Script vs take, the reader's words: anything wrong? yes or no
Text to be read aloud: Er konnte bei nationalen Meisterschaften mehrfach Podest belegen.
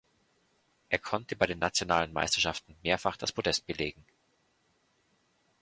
yes